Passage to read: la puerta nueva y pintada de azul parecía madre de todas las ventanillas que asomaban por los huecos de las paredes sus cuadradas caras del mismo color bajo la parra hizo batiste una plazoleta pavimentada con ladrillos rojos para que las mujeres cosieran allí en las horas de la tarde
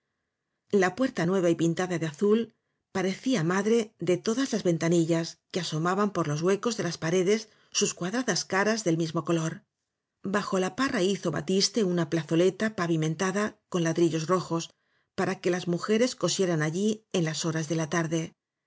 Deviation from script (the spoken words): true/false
false